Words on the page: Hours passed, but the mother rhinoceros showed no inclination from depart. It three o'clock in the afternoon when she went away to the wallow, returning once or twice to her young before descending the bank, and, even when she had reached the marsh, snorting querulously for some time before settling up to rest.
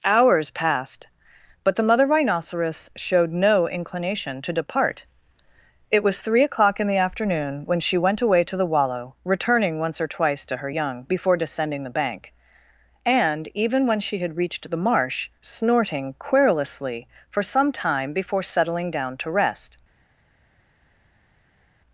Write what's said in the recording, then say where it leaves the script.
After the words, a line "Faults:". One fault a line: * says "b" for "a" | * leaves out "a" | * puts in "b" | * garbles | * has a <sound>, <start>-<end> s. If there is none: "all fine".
Hours passed, but the mother rhinoceros showed no inclination to depart. It was three o'clock in the afternoon when she went away to the wallow, returning once or twice to her young before descending the bank, and, even when she had reached the marsh, snorting querulously for some time before settling down to rest.
Faults:
* says "to" for "from"
* puts in "was"
* says "down" for "up"